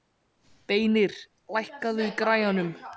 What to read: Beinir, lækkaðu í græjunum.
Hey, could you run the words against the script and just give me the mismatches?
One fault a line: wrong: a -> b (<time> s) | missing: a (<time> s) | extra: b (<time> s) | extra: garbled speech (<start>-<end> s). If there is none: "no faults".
no faults